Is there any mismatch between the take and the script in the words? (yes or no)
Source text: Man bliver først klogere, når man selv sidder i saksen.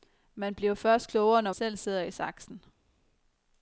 yes